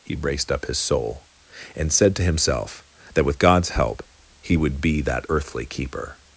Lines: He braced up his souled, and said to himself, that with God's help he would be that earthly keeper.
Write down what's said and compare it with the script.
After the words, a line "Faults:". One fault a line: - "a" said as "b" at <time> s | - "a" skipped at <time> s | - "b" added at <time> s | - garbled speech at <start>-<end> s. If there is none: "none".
He braced up his soul, and said to himself, that with God's help he would be that earthly keeper.
Faults:
- "souled" said as "soul" at 0.8 s